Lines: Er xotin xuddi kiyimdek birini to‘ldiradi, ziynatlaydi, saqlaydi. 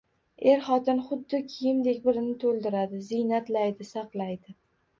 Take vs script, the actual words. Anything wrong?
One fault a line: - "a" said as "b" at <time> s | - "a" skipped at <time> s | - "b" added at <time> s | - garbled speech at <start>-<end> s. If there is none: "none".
none